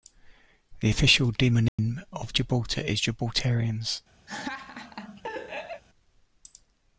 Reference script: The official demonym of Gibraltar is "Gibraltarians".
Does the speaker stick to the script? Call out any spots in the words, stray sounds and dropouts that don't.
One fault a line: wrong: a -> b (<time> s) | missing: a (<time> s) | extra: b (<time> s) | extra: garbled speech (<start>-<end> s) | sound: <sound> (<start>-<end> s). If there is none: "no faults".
sound: dropout (1.7-1.8 s)
sound: laugh (4.3-5.8 s)